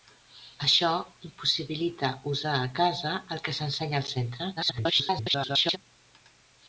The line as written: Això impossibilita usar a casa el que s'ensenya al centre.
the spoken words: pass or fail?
fail